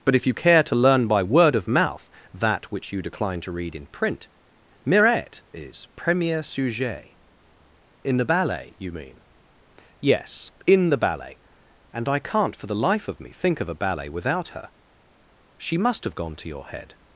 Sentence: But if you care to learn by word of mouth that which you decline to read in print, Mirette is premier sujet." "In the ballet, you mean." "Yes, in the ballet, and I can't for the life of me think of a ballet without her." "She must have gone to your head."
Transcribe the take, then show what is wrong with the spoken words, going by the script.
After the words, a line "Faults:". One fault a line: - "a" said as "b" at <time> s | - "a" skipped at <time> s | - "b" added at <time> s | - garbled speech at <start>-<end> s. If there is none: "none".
But if you care to learn by word of mouth that which you decline to read in print, Mirette is premier sujet." "In the ballet, you mean." "Yes, in the ballet, and I can't for the life of me think of a ballet without her." "She must have gone to your head."
Faults:
none